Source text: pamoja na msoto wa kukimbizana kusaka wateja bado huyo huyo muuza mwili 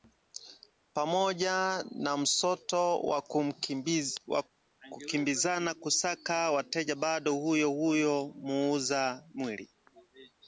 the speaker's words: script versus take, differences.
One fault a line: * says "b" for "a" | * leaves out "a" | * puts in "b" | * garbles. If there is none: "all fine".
all fine